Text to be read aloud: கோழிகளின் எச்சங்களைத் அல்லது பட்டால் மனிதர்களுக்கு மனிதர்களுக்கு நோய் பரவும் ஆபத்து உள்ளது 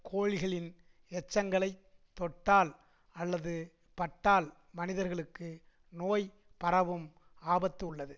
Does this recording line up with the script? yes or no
no